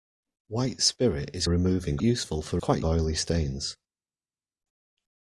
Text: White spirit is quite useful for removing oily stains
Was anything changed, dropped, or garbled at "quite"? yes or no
yes